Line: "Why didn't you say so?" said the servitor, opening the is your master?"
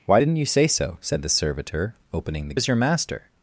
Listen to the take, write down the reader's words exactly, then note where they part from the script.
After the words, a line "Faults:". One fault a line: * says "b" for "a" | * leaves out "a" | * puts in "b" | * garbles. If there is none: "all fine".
"Why didn't you say so?" said the servitor, opening the is your master?"
Faults:
all fine